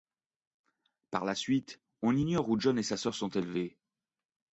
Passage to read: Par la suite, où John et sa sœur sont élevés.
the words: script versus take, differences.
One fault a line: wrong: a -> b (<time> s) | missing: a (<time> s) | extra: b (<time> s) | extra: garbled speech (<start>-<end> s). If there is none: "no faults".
extra: on ignore (2.0 s)